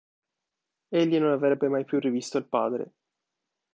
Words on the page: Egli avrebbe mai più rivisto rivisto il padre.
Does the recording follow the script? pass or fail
fail